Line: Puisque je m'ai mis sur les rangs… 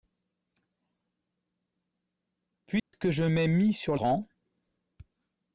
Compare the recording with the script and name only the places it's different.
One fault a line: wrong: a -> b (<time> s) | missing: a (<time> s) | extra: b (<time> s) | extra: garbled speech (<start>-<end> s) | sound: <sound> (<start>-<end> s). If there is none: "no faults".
sound: dropout (2.8-2.9 s)
missing: les (4.0 s)